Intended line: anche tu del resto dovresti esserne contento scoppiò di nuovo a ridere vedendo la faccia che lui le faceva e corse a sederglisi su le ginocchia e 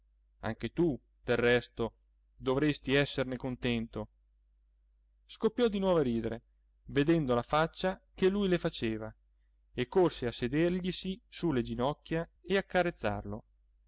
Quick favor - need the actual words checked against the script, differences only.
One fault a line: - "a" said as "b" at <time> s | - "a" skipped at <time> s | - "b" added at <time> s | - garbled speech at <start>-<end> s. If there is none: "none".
none